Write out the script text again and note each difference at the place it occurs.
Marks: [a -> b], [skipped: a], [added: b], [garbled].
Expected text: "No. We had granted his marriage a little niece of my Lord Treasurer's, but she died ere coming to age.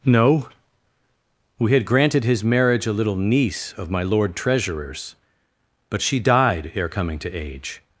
"No. We had granted his marriage a little niece of my Lord Treasurer's, but she died ere coming to age.